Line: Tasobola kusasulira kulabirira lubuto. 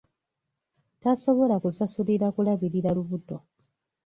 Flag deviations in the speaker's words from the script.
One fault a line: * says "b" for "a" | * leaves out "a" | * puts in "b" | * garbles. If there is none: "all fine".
all fine